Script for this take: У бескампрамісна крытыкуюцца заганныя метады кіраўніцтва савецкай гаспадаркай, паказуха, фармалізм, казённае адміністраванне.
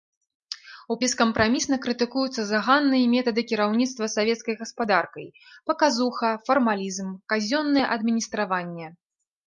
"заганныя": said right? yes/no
yes